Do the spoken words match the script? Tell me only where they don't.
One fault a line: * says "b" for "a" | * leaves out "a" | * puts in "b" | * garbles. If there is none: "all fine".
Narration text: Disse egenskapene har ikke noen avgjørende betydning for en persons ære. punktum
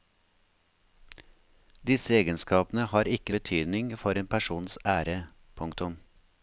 * leaves out "noen avgjørende"